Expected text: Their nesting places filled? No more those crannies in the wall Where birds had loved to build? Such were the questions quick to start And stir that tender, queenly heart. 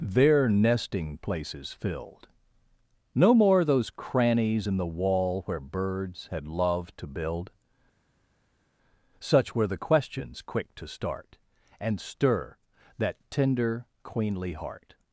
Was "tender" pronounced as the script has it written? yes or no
yes